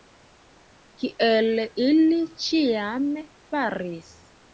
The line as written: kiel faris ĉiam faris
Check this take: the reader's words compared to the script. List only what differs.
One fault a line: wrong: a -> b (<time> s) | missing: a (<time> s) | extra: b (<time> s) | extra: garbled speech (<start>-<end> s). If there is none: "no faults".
wrong: faris -> ili (1.9 s)